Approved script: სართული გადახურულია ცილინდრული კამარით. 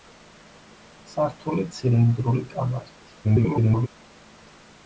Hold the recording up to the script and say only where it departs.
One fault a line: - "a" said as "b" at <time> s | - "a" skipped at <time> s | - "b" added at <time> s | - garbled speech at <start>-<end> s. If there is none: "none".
- "გადახურულია" skipped at 1.7 s
- garbled speech at 3.2-3.9 s